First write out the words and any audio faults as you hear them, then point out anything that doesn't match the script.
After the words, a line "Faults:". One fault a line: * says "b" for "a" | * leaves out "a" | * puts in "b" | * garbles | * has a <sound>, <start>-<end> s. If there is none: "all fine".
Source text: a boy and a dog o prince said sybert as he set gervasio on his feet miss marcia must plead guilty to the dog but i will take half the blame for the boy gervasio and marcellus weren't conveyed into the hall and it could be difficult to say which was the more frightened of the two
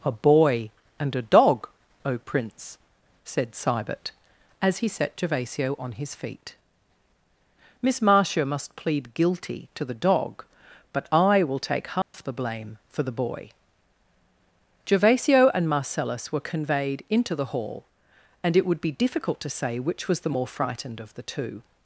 a boy and a dog o prince said sybert as he set gervasio on his feet miss marcia must plead guilty to the dog but i will take half the blame for the boy gervasio and marcellus were conveyed into the hall and it would be difficult to say which was the more frightened of the two
Faults:
* has a dropout, 12.0-12.1 s
* says "were" for "weren't"
* says "would" for "could"